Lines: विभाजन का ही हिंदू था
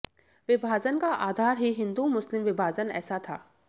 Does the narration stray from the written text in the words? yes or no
yes